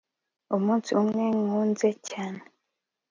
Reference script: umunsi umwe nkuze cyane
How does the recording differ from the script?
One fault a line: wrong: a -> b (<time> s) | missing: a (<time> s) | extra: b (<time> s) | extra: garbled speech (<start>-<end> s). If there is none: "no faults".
no faults